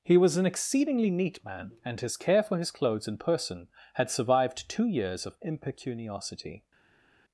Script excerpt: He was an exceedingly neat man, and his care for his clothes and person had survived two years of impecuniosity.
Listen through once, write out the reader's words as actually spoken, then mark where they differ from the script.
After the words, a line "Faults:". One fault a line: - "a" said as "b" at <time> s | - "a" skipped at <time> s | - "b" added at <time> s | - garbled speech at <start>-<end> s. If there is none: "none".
He was an exceedingly neat man, and his care for his clothes and person had survived two years of impecuniosity.
Faults:
none